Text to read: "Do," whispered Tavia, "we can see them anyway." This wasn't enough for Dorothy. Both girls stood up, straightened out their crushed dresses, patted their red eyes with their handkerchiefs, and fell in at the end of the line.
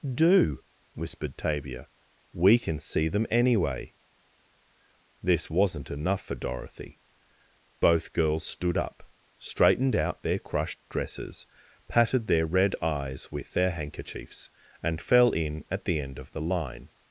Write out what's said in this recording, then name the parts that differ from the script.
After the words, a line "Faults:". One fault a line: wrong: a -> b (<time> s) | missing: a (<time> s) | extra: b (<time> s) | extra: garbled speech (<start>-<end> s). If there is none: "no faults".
"Do," whispered Tavia, "we can see them anyway." This wasn't enough for Dorothy. Both girls stood up, straightened out their crushed dresses, patted their red eyes with their handkerchiefs, and fell in at the end of the line.
Faults:
no faults